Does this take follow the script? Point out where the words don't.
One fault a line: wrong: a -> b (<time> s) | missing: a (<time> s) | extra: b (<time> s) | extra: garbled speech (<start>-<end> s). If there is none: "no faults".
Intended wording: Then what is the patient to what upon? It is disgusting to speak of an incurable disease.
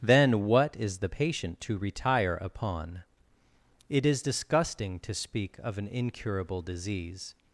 wrong: what -> retire (1.8 s)